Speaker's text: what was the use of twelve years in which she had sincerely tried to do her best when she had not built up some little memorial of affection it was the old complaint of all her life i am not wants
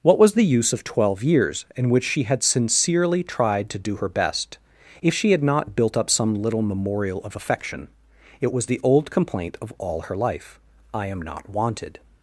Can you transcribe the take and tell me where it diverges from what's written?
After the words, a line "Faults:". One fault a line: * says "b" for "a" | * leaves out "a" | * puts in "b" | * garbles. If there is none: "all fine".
what was the use of twelve years in which she had sincerely tried to do her best if she had not built up some little memorial of affection it was the old complaint of all her life i am not wanted
Faults:
* says "if" for "when"
* says "wanted" for "wants"